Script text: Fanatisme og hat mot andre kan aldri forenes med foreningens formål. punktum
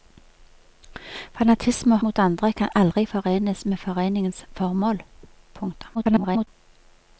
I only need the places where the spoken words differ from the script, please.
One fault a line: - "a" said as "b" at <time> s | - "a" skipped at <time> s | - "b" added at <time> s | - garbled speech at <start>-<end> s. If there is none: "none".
- "hat" skipped at 2.0 s
- garbled speech at 5.9-6.5 s